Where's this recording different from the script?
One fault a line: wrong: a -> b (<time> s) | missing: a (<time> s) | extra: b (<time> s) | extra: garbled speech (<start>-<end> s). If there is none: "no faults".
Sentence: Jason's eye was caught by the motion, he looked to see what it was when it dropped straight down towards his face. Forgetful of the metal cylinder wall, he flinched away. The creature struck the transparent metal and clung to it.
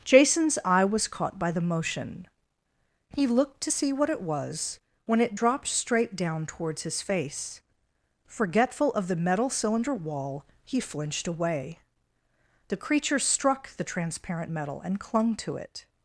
no faults